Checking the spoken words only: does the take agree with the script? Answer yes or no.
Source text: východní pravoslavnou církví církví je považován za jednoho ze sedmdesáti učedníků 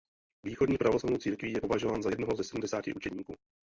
no